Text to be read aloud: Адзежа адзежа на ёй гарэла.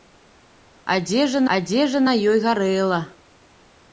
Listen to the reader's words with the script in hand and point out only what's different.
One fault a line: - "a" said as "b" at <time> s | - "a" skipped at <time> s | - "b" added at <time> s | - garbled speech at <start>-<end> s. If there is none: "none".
none